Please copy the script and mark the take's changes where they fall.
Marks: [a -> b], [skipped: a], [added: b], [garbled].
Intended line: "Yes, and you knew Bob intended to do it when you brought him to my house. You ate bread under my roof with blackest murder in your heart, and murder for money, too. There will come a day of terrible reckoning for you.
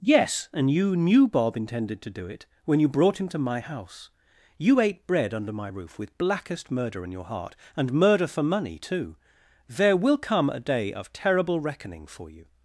"Yes, and you knew Bob intended to do it when you brought him to my house. You ate bread under my roof with blackest murder in your heart, and murder for money, too. There will come a day of terrible reckoning for you.